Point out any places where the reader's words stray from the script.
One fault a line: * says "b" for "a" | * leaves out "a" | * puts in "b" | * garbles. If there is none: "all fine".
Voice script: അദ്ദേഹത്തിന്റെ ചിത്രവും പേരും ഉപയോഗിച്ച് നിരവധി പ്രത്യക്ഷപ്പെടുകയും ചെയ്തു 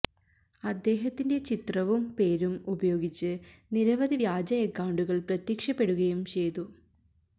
* puts in "വ്യാജ അക്കൌണ്ടുകള്"